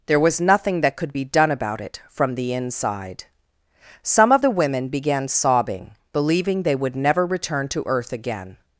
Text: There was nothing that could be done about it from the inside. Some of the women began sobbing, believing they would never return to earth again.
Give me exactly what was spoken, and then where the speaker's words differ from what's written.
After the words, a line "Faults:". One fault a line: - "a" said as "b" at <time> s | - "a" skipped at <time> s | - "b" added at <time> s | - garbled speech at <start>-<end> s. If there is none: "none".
There was nothing that could be done about it from the inside. Some of the women began sobbing, believing they would never return to earth again.
Faults:
none